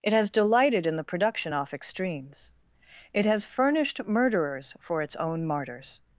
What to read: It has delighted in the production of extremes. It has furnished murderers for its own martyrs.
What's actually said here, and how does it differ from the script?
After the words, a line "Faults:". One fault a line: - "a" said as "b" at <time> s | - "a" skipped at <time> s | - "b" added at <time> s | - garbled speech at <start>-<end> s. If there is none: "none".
It has delighted in the production off extremes. It has furnished murderers for its own martyrs.
Faults:
- "of" said as "off" at 1.5 s